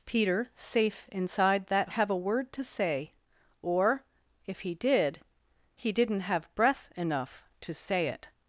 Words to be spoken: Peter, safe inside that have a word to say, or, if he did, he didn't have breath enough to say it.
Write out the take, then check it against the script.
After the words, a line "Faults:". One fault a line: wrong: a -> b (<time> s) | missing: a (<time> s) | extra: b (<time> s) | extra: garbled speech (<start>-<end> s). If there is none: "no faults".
Peter, safe inside that have a word to say, or, if he did, he didn't have breath enough to say it.
Faults:
no faults